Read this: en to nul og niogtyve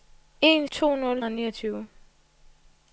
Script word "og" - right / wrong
right